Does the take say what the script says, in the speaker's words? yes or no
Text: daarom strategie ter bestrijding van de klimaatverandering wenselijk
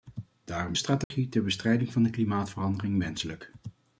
yes